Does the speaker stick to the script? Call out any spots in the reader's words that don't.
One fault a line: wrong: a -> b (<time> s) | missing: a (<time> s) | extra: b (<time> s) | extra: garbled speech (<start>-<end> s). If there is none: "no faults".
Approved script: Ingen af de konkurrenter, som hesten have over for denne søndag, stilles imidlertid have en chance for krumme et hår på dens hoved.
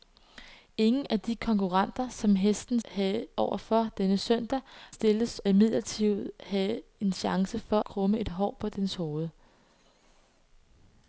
no faults